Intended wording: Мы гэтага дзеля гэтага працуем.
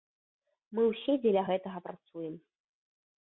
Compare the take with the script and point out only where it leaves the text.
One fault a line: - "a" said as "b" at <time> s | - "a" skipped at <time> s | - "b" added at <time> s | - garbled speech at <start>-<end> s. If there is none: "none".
- "гэтага" said as "ўсе" at 0.9 s